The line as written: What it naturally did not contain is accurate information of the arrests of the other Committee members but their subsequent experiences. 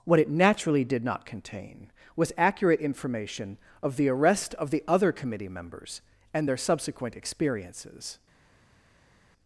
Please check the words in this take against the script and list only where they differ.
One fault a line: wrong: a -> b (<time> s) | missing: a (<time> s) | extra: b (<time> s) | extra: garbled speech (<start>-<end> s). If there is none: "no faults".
wrong: is -> was (2.1 s)
wrong: arrests -> arrest (4.1 s)
wrong: but -> and (6.3 s)